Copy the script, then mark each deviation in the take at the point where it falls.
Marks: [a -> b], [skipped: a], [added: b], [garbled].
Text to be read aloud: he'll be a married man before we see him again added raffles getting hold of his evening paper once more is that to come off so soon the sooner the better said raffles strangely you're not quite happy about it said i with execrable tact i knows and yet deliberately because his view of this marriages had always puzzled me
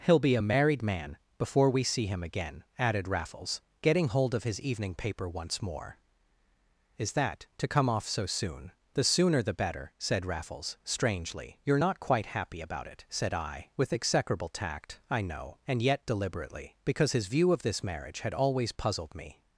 he'll be a married man before we see him again added raffles getting hold of his evening paper once more is that to come off so soon the sooner the better said raffles strangely you're not quite happy about it said i with execrable tact i [knows -> know] and yet deliberately because his view of this [marriages -> marriage] had always puzzled me